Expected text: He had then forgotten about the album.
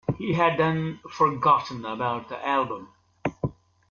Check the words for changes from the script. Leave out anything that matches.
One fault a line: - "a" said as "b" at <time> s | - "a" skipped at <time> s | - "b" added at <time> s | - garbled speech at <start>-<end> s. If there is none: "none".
none